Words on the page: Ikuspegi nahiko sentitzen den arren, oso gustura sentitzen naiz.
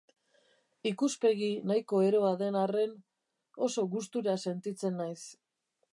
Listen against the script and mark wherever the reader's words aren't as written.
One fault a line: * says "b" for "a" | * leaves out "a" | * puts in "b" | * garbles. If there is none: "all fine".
* says "eroa" for "sentitzen"